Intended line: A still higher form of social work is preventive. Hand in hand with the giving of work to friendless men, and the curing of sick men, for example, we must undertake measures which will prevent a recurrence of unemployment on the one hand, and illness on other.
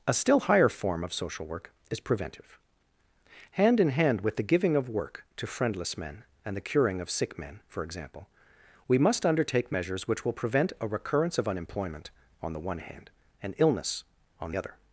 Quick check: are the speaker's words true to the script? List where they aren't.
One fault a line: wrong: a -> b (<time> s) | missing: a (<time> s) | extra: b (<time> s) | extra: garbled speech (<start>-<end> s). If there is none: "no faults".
no faults